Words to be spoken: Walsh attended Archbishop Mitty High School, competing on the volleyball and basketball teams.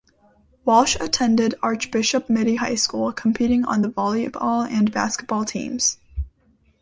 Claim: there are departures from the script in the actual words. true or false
false